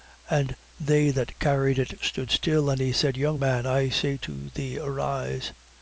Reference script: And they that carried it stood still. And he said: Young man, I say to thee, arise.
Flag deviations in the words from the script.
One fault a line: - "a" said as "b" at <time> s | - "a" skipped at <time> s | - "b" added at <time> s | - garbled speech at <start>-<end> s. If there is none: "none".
none